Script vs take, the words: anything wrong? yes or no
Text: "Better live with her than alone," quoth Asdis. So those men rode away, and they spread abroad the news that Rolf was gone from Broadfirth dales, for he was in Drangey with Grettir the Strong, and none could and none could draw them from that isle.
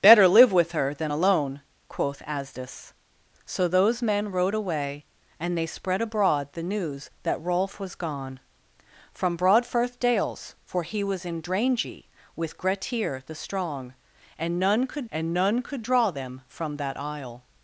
no